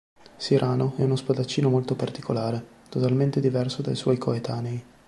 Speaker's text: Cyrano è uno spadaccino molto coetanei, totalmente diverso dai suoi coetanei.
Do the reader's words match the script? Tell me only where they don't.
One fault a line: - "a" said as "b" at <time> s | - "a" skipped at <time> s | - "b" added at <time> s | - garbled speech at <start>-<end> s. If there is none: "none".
- "coetanei" said as "particolare" at 2.0 s